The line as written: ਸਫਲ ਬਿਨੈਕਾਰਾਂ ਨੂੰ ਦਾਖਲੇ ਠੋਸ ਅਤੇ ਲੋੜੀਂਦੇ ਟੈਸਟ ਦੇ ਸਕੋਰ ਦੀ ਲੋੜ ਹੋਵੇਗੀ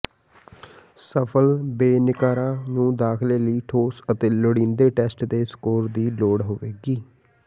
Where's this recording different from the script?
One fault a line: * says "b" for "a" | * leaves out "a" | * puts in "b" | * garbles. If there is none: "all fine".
* puts in "ਲਈ"